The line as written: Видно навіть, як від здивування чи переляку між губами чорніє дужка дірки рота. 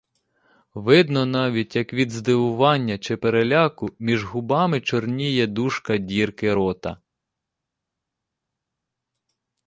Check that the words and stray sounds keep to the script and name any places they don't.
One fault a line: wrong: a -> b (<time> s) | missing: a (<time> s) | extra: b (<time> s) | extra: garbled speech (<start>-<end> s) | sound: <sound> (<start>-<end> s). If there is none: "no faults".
no faults